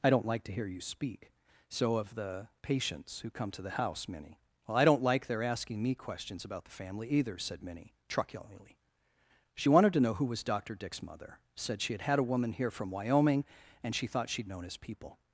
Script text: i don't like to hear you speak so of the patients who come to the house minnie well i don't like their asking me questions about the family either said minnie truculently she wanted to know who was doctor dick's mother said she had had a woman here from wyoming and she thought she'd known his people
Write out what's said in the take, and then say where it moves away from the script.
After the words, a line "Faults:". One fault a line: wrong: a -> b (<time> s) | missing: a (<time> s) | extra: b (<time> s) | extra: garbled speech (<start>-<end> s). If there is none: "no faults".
i don't like to hear you speak so of the patients who come to the house minnie well i don't like their asking me questions about the family either said minnie truculently she wanted to know who was doctor dick's mother said she had had a woman here from wyoming and she thought she'd known his people
Faults:
no faults